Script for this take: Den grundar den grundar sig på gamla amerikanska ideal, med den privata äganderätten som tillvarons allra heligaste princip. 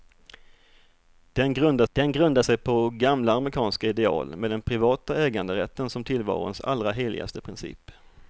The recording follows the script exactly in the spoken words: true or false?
true